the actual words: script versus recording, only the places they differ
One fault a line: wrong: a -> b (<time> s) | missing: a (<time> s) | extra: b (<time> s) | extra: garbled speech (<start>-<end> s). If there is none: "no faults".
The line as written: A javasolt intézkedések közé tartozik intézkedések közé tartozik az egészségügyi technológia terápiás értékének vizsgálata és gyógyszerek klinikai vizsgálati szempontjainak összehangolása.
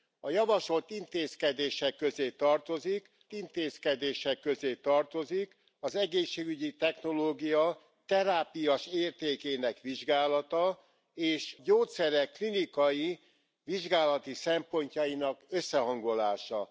no faults